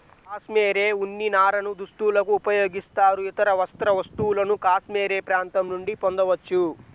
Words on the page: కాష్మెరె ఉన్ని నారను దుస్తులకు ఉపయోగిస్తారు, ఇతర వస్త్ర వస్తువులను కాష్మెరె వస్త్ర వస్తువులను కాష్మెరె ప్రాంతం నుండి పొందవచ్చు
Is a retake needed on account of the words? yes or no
yes